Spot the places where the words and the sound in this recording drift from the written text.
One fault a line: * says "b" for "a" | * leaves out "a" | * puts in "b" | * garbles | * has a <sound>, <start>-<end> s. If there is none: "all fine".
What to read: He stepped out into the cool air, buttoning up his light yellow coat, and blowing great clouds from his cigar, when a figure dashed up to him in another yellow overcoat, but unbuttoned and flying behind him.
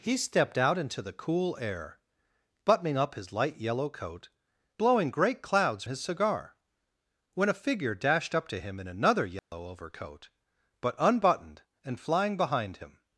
* leaves out "and"
* leaves out "from"
* has a dropout, 9.4-9.5 s